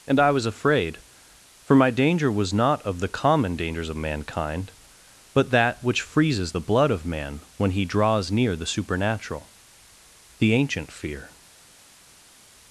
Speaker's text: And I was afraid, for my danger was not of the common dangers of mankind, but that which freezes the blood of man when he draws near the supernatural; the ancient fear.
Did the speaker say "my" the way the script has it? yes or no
yes